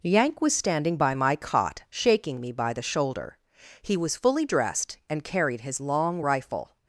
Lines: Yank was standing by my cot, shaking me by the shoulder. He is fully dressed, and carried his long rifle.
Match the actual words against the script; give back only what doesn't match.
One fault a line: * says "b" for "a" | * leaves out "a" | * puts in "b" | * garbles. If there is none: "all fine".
* says "was" for "is"